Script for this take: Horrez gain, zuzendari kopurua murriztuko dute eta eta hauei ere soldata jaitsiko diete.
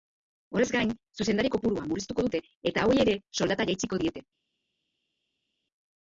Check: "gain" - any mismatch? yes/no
no